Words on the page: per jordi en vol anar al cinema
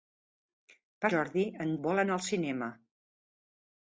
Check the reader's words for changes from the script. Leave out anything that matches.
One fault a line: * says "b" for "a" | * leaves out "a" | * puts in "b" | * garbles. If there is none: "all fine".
all fine